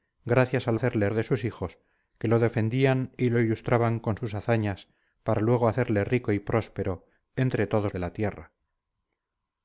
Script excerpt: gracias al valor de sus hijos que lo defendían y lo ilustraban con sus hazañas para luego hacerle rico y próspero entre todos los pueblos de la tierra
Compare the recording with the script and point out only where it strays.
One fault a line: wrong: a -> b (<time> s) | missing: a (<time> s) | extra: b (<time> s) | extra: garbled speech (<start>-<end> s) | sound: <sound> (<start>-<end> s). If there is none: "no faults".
wrong: valor -> hacerle (0.7 s)
missing: los pueblos (7.9 s)